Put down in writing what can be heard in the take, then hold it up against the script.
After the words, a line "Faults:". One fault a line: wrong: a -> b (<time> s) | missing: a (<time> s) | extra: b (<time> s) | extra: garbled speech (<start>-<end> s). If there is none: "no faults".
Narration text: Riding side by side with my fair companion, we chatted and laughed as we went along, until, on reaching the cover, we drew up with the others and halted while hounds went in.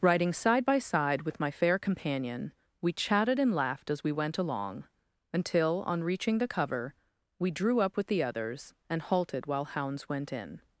Riding side by side with my fair companion, we chatted and laughed as we went along, until, on reaching the cover, we drew up with the others and halted while hounds went in.
Faults:
no faults